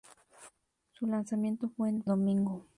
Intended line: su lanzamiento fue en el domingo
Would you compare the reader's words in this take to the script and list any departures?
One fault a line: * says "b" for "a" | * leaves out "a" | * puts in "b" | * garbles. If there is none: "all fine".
all fine